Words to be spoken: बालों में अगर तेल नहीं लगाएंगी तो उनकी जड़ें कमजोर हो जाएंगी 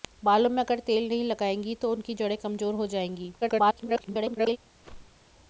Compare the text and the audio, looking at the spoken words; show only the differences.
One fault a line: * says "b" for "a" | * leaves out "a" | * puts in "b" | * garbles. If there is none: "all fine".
* garbles